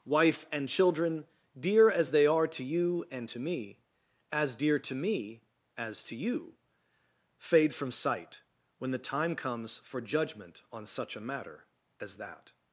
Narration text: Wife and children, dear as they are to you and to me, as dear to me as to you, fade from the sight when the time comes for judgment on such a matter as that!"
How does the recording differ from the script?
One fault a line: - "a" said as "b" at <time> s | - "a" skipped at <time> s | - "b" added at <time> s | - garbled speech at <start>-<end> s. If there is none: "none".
- "the" skipped at 7.9 s